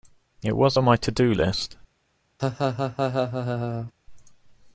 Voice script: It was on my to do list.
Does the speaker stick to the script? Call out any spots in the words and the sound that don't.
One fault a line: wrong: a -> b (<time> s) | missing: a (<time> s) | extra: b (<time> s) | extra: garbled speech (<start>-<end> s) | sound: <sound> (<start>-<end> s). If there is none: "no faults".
sound: laugh (2.4-3.9 s)